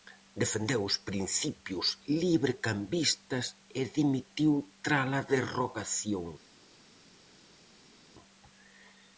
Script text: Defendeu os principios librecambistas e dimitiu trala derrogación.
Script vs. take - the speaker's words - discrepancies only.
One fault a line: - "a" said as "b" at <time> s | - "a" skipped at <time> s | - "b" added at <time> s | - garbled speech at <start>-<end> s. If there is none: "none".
none